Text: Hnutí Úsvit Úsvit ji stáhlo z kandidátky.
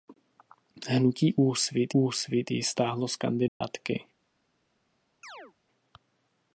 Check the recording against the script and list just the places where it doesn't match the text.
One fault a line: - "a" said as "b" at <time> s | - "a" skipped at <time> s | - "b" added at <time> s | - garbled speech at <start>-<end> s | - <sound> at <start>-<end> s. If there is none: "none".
- dropout at 3.5-3.6 s
- chirp at 5.2-5.5 s